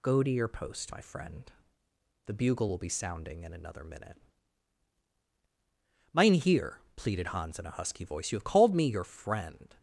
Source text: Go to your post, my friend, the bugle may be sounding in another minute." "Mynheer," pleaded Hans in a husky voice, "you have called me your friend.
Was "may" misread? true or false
true